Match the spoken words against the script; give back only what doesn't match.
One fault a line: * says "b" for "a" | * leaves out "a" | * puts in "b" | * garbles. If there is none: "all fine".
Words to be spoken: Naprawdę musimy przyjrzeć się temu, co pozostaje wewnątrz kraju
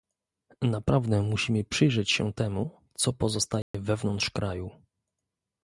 all fine